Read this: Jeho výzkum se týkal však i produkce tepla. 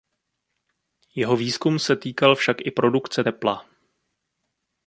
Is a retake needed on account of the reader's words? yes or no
no